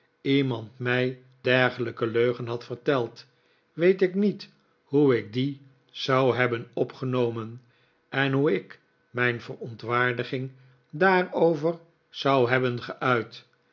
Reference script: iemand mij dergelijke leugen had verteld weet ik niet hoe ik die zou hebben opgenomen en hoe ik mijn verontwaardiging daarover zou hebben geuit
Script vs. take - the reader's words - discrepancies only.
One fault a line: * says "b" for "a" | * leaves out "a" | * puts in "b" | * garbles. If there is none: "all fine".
all fine